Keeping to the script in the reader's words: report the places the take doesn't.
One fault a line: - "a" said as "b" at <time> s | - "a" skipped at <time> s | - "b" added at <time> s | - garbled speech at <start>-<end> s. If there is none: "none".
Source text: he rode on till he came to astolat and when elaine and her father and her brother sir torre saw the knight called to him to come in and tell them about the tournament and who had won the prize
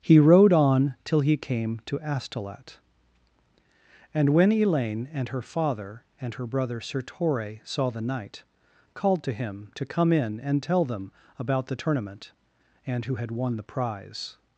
none